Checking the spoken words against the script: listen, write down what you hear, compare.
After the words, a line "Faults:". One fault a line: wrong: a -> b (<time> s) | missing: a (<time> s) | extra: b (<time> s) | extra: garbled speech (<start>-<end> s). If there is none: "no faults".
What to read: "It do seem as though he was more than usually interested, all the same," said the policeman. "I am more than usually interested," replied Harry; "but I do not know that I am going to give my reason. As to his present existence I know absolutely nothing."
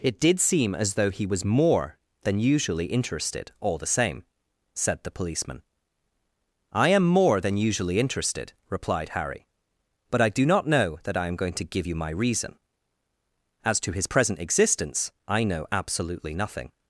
"It did seem as though he was more than usually interested, all the same," said the policeman. "I am more than usually interested," replied Harry; "but I do not know that I am going to give you my reason. As to his present existence I know absolutely nothing."
Faults:
wrong: do -> did (0.2 s)
extra: you (11.8 s)